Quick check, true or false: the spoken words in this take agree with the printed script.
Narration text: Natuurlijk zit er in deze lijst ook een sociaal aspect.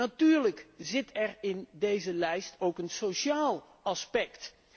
true